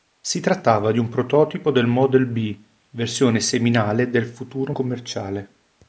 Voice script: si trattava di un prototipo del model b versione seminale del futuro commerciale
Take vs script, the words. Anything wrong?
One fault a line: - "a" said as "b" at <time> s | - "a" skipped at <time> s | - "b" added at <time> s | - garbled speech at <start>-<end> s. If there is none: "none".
none